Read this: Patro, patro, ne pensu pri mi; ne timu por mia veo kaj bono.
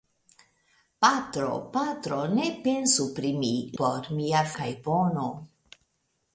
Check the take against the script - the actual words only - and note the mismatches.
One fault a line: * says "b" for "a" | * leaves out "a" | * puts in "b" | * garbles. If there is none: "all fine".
* leaves out "ne timu"
* leaves out "veo"